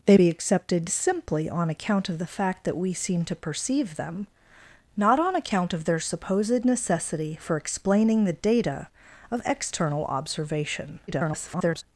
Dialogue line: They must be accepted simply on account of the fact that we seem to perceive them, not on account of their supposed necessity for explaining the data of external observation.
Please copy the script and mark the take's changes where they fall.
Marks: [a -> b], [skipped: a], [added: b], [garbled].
They [skipped: must] be accepted simply on account of the fact that we seem to perceive them, not on account of their supposed necessity for explaining the data of external observation. [garbled]